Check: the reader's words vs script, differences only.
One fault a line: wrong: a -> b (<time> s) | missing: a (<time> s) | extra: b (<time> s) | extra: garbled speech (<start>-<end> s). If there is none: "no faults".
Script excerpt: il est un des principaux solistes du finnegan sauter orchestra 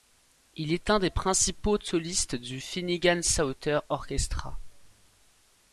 no faults